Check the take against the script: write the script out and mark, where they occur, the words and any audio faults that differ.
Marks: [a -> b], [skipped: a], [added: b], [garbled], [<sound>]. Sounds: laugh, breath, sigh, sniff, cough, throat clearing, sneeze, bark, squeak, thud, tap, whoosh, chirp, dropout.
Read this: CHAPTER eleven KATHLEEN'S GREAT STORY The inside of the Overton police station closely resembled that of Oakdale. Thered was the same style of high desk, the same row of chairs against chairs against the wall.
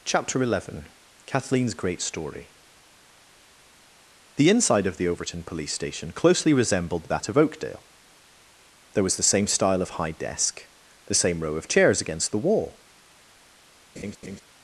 CHAPTER eleven KATHLEEN'S GREAT STORY The inside of the Overton police station closely resembled that of Oakdale. [Thered -> There] was the same style of high desk, the same row of chairs against [skipped: chairs against] the wall. [laugh]